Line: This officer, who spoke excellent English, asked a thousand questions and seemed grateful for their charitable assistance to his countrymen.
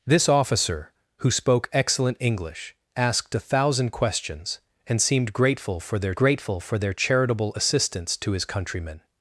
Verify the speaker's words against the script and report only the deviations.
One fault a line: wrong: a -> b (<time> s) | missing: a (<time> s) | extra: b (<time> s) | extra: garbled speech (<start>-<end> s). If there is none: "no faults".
extra: grateful for their (6.1 s)